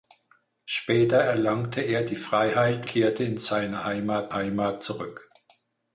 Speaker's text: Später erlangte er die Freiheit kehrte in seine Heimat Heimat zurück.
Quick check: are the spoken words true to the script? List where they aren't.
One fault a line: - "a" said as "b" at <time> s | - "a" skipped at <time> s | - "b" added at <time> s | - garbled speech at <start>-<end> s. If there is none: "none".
none